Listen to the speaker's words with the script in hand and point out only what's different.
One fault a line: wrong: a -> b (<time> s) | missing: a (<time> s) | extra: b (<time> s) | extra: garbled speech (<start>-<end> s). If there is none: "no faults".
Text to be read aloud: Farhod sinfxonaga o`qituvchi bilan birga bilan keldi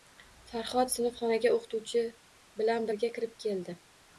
wrong: bilan -> kirib (3.2 s)